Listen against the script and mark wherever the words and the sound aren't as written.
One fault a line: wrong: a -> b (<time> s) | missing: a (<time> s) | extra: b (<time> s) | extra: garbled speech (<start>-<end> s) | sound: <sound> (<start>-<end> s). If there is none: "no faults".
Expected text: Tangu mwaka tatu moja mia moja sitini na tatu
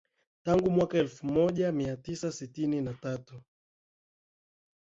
wrong: tatu -> elfu (1.0 s)
wrong: moja -> tisa (2.0 s)